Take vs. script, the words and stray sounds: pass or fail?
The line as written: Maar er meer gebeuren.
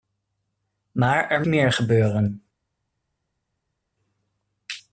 pass